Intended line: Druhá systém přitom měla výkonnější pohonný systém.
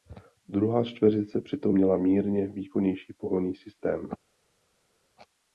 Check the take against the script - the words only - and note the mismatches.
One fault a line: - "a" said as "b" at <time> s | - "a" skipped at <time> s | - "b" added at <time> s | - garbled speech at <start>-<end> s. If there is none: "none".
- "systém" said as "čtveřice" at 0.8 s
- "mírně" added at 1.9 s